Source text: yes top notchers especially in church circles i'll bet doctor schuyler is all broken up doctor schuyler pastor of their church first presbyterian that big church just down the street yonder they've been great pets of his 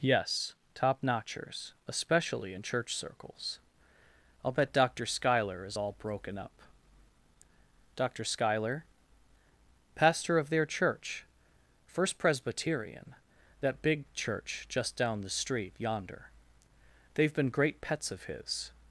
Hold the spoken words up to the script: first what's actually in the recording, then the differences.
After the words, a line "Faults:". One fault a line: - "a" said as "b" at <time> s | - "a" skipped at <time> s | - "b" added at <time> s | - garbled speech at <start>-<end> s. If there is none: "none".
yes top notchers especially in church circles i'll bet doctor schuyler is all broken up doctor schuyler pastor of their church first presbyterian that big church just down the street yonder they've been great pets of his
Faults:
none